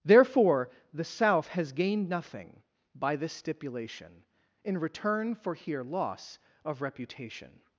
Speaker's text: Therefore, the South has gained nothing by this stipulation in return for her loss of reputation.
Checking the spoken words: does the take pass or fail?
fail